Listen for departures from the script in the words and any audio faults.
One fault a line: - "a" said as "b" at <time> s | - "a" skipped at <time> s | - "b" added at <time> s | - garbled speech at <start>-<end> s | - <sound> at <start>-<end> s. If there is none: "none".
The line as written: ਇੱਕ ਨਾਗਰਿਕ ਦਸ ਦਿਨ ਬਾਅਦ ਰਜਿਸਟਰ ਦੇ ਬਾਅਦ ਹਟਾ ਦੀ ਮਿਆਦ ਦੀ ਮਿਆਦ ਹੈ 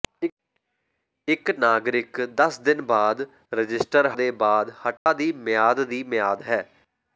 - dropout at 5.0-5.1 s